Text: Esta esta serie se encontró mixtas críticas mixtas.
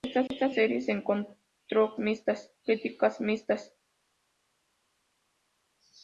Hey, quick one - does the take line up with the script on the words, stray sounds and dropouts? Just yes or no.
yes